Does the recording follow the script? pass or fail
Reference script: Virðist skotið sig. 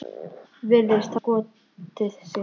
pass